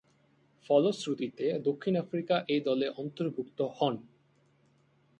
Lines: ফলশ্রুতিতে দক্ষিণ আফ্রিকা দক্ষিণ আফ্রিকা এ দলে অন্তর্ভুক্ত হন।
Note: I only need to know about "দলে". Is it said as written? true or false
true